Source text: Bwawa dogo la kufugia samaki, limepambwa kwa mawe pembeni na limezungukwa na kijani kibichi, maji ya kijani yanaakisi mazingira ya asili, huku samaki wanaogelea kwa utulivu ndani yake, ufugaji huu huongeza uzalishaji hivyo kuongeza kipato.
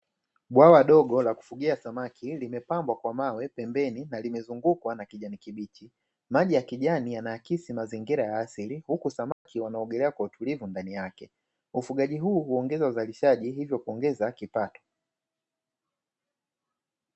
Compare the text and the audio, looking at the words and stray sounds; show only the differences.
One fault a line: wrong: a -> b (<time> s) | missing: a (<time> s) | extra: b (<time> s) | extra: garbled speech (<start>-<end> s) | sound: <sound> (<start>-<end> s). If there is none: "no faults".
sound: dropout (9.3-9.5 s)